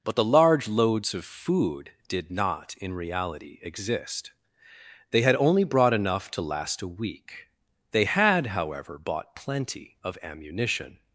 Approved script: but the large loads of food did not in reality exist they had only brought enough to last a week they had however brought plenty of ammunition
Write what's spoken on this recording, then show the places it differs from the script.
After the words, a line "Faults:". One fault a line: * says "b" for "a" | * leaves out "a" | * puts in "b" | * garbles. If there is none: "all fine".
but the large loads of food did not in reality exist they had only brought enough to last a week they had however bought plenty of ammunition
Faults:
* says "bought" for "brought"